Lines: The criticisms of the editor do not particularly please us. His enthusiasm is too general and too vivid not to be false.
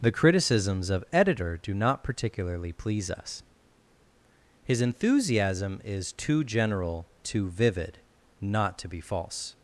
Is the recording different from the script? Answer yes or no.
yes